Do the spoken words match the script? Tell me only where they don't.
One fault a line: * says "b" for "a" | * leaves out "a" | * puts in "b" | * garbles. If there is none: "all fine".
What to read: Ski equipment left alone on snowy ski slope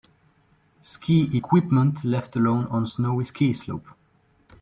all fine